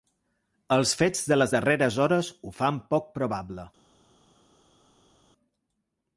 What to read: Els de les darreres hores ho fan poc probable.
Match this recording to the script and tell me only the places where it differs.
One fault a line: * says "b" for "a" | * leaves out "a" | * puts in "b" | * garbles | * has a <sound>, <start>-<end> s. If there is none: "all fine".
* puts in "fets"